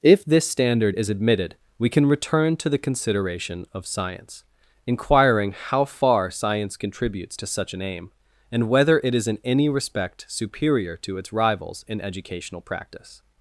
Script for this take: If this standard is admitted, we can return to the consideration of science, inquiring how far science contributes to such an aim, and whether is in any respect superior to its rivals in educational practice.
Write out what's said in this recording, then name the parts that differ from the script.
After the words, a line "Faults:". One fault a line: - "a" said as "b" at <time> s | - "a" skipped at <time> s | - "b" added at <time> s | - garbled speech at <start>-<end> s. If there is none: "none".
If this standard is admitted, we can return to the consideration of science, inquiring how far science contributes to such an aim, and whether it is in any respect superior to its rivals in educational practice.
Faults:
- "it" added at 9.0 s